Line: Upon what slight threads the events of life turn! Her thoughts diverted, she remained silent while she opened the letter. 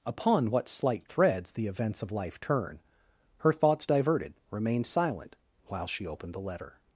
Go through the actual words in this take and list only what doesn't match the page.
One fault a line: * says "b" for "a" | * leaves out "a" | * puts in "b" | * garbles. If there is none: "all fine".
* leaves out "she"